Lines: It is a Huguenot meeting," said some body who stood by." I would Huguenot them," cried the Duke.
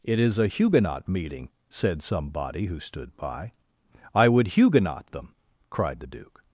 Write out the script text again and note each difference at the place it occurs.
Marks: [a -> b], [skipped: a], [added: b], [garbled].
It is a Huguenot meeting," said some body who stood by." I would Huguenot them," cried the Duke.